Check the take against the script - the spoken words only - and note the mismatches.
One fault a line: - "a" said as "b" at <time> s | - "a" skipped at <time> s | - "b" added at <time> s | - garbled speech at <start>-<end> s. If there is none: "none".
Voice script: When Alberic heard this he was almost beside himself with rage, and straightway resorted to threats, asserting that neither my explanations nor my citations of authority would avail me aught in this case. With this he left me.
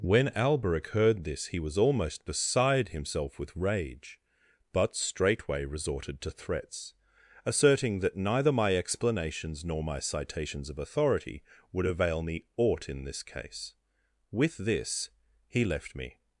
- "and" said as "but" at 4.7 s